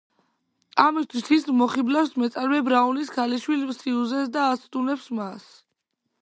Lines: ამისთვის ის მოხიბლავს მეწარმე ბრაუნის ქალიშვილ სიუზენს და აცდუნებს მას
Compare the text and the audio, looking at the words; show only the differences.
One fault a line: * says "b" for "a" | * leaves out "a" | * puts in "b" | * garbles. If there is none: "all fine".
all fine